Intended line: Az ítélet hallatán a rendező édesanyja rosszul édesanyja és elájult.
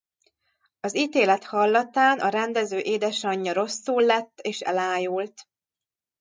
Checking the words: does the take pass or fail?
fail